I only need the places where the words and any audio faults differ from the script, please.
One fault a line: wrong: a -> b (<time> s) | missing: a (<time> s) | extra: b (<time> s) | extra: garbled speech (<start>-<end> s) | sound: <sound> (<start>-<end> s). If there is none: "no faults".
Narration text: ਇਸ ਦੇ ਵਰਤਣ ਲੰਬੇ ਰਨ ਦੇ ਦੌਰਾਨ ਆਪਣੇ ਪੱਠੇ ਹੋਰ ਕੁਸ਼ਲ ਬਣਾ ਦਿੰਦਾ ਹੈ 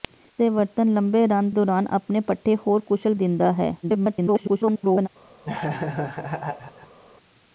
missing: ਦੇ (1.5 s)
missing: ਬਣਾ (3.1 s)
extra: garbled speech (3.8-5.1 s)
sound: laugh (5.4-7.0 s)